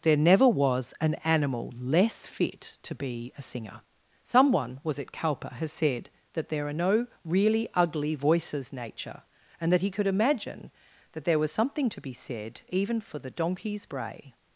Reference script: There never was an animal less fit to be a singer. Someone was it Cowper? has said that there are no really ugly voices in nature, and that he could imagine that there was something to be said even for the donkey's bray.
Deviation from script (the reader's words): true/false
true